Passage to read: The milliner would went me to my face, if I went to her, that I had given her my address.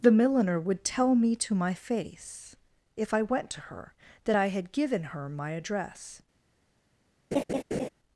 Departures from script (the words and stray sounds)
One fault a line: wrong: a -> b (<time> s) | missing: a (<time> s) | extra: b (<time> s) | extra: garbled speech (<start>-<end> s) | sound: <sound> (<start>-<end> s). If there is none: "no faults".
wrong: went -> tell (0.8 s)
sound: laugh (7.3-7.9 s)